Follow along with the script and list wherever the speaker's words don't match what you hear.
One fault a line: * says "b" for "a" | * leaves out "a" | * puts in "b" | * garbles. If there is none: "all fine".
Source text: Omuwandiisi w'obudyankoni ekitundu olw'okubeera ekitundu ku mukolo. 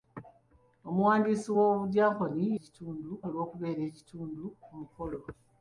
all fine